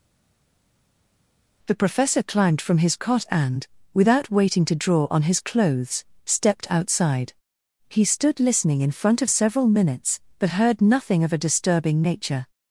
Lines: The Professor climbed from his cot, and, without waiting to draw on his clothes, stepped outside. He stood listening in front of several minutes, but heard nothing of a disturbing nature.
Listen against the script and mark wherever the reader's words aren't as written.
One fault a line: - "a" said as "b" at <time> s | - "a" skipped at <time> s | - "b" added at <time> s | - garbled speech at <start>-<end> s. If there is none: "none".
none